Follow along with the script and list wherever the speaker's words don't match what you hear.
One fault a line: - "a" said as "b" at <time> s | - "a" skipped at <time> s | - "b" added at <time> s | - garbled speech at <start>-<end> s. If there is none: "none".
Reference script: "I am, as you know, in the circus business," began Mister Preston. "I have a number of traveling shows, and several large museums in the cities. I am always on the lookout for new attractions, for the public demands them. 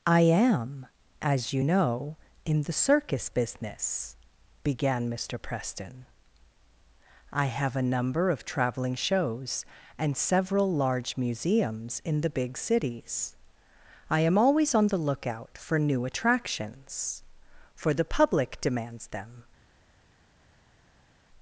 - "big" added at 12.3 s